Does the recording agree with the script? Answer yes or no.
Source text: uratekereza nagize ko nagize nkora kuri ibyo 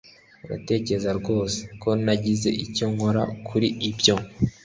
no